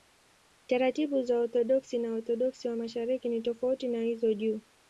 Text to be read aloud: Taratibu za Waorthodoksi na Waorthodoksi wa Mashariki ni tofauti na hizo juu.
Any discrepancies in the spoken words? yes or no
no